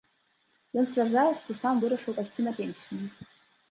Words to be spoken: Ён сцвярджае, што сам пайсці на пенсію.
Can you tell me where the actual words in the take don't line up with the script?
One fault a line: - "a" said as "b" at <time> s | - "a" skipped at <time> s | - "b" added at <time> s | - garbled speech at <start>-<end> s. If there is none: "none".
- "вырашыў" added at 1.8 s